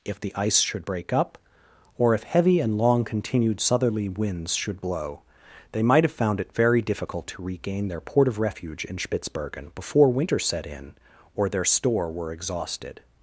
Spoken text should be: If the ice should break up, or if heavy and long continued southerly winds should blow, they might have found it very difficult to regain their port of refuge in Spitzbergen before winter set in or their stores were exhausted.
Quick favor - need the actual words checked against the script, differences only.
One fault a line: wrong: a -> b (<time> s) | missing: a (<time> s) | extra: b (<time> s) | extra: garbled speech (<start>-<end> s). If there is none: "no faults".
wrong: stores -> store (11.6 s)